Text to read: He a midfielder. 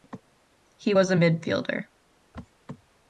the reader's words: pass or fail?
fail